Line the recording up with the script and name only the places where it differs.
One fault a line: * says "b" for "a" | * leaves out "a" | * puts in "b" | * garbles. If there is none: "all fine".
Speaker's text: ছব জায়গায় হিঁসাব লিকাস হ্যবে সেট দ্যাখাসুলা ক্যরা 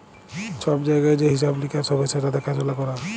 * puts in "যে"